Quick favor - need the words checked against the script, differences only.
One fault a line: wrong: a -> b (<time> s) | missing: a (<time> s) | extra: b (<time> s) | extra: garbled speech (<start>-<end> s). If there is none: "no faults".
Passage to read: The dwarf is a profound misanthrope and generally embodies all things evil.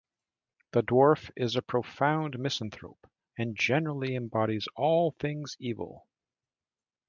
no faults